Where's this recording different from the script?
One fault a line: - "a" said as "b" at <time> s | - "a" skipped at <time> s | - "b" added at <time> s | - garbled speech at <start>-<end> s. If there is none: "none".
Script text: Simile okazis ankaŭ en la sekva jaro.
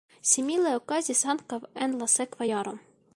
none